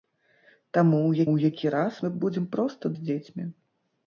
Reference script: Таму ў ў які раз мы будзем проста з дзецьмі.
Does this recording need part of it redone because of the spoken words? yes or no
no